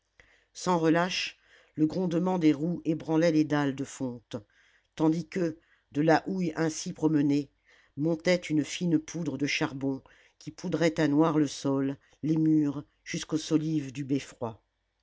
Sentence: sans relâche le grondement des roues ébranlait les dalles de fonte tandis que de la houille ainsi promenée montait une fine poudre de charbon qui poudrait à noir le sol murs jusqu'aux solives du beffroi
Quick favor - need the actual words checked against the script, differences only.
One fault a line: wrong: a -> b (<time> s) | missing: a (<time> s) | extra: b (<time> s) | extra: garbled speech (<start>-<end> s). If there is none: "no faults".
extra: les (12.2 s)